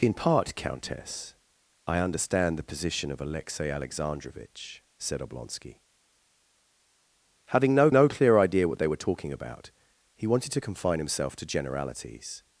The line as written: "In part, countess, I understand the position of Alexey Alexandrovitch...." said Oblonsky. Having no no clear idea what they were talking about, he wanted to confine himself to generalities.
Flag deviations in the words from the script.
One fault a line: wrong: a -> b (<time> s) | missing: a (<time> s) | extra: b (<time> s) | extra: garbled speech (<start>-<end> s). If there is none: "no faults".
no faults